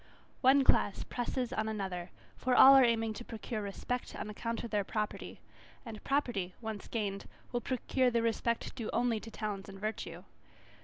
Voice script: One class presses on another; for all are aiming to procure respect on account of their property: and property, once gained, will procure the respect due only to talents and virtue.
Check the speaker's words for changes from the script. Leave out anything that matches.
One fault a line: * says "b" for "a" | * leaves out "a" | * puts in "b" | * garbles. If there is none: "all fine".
all fine